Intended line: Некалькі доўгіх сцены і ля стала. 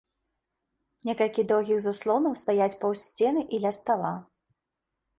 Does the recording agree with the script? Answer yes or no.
no